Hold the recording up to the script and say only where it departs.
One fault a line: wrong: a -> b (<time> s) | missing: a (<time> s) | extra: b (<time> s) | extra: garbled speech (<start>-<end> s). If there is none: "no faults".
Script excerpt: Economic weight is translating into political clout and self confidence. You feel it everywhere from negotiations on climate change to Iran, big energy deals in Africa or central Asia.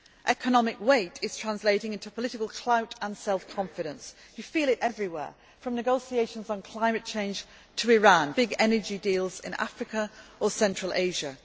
no faults